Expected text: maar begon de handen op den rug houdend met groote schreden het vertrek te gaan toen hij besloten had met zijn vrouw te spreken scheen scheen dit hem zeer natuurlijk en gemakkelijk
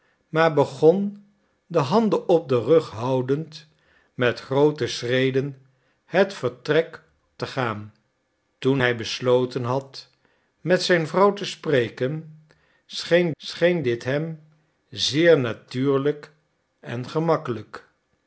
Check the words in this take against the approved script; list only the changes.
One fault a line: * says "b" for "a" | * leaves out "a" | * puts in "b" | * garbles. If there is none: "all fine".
all fine